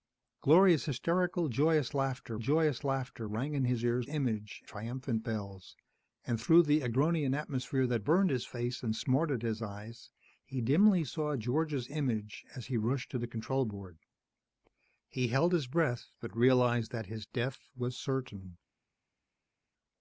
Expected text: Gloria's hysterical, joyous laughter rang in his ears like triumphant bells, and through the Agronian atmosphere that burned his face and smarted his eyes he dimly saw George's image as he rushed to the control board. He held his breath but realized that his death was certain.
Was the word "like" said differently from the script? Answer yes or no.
yes